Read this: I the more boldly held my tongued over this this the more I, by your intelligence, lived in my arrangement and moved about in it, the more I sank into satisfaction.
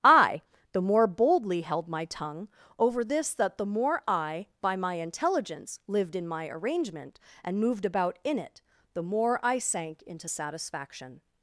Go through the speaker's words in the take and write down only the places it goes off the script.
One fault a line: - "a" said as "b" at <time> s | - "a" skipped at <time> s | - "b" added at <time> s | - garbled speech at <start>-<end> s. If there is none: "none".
- "tongued" said as "tongue" at 2.0 s
- "this" said as "that" at 3.4 s
- "your" said as "my" at 4.8 s